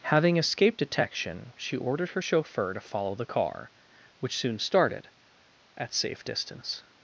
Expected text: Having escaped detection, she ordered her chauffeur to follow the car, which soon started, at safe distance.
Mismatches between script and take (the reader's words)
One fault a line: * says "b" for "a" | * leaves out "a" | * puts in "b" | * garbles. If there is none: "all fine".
all fine